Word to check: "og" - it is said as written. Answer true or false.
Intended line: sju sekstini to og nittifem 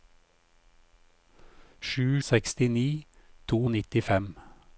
true